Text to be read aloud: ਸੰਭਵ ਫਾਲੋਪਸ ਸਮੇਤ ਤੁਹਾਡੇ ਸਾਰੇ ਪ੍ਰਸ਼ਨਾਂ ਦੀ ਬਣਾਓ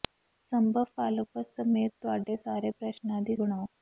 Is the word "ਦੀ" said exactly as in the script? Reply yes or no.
yes